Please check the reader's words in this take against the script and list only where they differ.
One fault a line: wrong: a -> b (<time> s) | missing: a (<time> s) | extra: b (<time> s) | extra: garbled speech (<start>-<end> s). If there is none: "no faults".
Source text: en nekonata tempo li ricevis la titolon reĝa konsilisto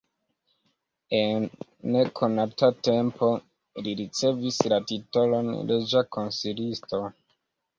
no faults